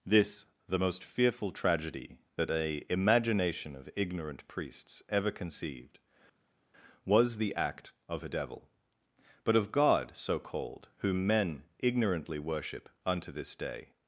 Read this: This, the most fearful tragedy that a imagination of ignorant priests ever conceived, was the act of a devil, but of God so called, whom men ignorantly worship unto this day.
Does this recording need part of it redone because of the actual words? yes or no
no